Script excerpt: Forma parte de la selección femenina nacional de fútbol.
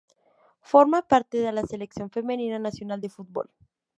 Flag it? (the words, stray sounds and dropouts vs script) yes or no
no